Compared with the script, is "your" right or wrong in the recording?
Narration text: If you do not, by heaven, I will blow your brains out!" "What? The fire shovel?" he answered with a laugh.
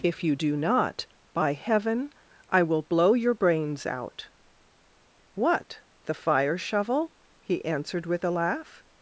right